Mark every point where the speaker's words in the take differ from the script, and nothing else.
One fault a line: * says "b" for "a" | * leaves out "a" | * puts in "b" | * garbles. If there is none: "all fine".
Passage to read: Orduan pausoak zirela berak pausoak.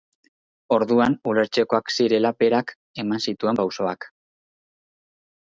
* says "ulertzekoak" for "pausoak"
* puts in "eman zituen"